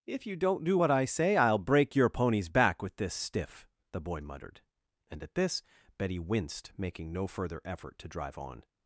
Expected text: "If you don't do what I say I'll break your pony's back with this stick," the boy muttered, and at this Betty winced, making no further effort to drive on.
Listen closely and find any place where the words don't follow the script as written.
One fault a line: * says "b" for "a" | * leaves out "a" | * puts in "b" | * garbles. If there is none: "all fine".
* says "stiff" for "stick"